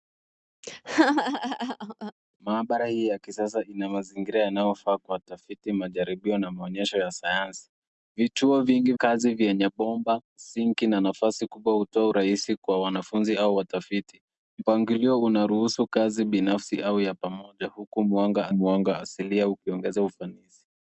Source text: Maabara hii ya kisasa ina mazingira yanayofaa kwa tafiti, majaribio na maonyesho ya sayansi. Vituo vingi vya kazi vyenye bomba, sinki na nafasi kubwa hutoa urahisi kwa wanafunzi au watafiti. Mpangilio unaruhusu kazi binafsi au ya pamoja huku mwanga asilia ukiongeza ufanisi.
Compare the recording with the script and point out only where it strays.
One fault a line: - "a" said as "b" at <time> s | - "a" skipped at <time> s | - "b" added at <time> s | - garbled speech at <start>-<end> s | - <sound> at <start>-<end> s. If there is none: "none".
- laugh at 0.6-2.1 s
- "vya" skipped at 8.9 s
- "mwanga" added at 18.5 s